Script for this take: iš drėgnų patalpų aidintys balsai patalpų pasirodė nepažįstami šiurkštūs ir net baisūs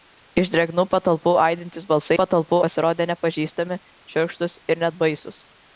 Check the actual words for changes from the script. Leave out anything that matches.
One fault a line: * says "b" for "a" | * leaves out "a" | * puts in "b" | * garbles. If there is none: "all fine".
all fine